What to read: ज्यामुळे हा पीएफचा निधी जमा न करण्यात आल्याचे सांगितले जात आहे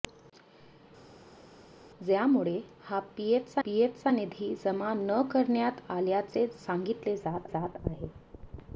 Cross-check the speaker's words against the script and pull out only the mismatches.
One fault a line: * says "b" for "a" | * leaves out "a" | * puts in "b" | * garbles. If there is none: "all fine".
* puts in "पीएफचा"
* puts in "जात"